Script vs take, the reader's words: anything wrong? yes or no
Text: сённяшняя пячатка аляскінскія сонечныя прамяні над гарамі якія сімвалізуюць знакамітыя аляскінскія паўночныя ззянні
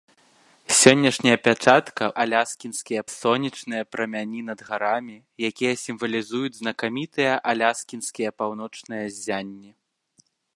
no